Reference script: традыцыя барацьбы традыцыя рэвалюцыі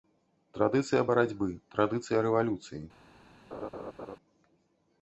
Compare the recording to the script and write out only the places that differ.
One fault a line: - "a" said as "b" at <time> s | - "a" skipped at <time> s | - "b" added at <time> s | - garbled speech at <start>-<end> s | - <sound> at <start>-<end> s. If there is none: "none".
- laugh at 3.5-4.2 s